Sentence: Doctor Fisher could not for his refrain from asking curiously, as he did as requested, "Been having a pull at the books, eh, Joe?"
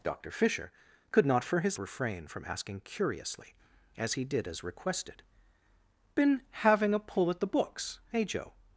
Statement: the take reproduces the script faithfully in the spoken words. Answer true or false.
true